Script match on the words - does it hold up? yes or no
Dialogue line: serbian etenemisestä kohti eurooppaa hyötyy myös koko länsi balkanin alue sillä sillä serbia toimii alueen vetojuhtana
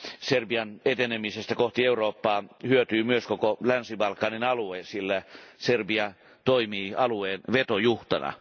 no